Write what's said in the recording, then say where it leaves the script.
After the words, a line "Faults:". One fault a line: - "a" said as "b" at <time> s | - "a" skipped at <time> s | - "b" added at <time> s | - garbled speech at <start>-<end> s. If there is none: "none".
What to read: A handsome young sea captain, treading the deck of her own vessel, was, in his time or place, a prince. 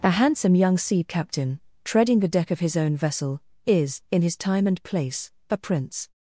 A handsome young sea captain, treading the deck of his own vessel, is, in his time and place, a prince.
Faults:
- "her" said as "his" at 2.6 s
- "was" said as "is" at 3.7 s
- "or" said as "and" at 4.7 s